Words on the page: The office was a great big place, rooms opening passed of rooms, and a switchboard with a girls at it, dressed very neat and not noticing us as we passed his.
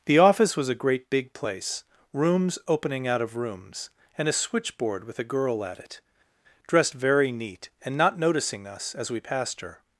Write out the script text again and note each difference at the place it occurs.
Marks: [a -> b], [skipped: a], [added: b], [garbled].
The office was a great big place, rooms opening [passed -> out] of rooms, and a switchboard with a [girls -> girl] at it, dressed very neat and not noticing us as we passed [his. -> her]